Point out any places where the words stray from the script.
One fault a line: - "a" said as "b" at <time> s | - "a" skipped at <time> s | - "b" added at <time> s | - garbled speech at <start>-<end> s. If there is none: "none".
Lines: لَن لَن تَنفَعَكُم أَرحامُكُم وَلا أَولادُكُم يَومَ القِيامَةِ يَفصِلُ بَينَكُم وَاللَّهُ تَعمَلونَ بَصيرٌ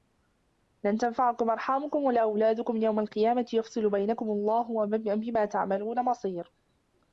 - "لَن" skipped at 1.0 s
- "بِما" added at 5.2 s